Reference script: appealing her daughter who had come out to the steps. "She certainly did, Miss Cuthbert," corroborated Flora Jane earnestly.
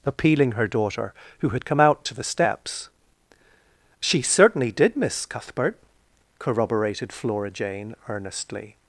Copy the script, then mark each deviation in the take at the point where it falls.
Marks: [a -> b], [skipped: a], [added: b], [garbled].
appealing her daughter who had come out to the steps. "She certainly did, Miss Cuthbert," corroborated Flora Jane earnestly.